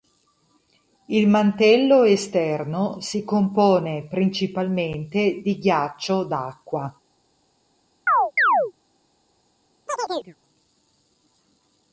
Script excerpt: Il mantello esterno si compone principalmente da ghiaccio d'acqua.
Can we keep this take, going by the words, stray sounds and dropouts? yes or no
no